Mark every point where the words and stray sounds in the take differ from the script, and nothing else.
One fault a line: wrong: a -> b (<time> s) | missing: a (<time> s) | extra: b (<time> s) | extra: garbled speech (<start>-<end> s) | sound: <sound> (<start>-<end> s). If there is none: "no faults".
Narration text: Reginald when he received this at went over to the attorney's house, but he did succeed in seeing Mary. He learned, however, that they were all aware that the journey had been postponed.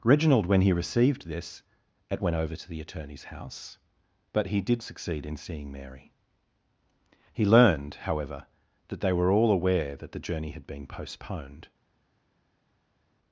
no faults